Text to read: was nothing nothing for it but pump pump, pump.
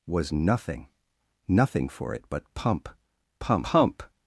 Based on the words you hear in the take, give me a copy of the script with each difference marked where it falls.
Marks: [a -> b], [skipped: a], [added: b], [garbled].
was nothing nothing for it but pump pump, pump.